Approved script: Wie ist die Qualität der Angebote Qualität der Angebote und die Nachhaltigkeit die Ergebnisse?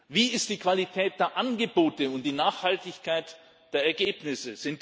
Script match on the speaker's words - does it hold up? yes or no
no